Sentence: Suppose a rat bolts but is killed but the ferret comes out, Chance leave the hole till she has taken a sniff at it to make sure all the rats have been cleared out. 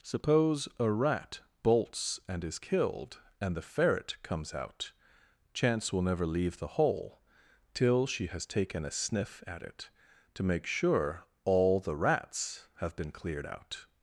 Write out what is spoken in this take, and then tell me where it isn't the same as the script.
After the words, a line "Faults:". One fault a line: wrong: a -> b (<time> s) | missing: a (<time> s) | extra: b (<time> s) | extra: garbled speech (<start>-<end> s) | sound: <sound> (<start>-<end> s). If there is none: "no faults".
Suppose a rat bolts and is killed and the ferret comes out, Chance will never leave the hole till she has taken a sniff at it to make sure all the rats have been cleared out.
Faults:
wrong: but -> and (2.3 s)
wrong: but -> and (3.4 s)
extra: will never (5.9 s)